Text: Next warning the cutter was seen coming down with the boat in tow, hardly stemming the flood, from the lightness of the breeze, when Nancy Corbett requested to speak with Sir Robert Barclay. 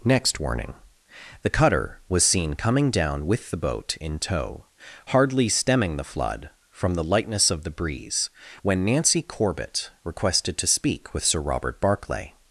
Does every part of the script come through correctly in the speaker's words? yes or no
yes